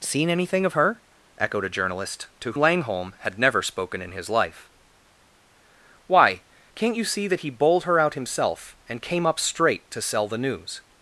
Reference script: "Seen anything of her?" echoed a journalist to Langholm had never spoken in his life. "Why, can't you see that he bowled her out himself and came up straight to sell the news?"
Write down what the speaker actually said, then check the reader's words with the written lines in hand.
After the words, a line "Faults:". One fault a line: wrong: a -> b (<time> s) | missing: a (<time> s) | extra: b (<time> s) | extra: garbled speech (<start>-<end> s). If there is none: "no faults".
"Seen anything of her?" echoed a journalist to Langholm had never spoken in his life. "Why, can't you see that he bowled her out himself and came up straight to sell the news?"
Faults:
no faults